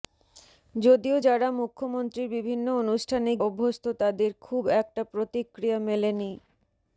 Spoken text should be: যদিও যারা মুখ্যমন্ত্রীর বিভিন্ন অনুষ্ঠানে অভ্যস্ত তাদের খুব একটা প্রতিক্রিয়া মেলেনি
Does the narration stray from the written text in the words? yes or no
no